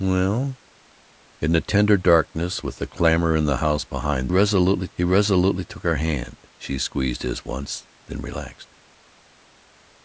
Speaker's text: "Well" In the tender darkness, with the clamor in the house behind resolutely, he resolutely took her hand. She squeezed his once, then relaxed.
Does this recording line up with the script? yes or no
yes